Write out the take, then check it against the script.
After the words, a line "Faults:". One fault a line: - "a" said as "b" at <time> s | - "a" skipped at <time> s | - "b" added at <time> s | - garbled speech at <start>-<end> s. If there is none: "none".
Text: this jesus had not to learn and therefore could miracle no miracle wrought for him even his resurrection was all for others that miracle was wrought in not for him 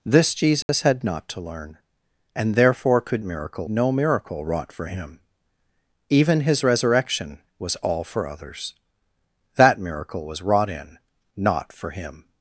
this jesus had not to learn and therefore could miracle no miracle wrought for him even his resurrection was all for others that miracle was wrought in not for him
Faults:
none